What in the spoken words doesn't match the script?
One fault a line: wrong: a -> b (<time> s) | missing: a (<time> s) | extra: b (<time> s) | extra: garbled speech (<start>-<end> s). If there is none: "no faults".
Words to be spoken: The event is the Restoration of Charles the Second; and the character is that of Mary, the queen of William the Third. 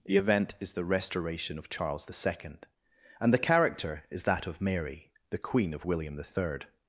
no faults